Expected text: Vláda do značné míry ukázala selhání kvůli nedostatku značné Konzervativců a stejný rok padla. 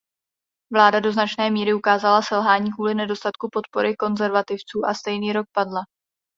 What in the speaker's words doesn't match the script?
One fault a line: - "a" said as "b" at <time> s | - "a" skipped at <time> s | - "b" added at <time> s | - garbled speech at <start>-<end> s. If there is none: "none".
- "značné" said as "podpory" at 3.5 s